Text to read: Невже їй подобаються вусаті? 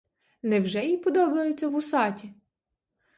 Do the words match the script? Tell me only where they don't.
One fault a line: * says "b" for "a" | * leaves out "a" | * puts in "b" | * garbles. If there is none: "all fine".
all fine